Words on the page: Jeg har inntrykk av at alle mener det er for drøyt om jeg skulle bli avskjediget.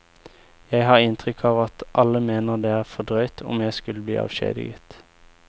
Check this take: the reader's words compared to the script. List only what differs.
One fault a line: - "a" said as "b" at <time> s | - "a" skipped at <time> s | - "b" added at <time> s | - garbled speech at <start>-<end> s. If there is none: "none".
none